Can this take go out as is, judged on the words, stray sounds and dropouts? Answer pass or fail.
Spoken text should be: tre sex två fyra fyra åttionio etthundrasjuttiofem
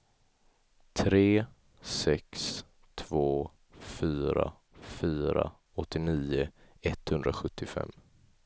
pass